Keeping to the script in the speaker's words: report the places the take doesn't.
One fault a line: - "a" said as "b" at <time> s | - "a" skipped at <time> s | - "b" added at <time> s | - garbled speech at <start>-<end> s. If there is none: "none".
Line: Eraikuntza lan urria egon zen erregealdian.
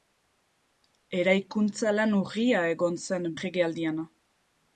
none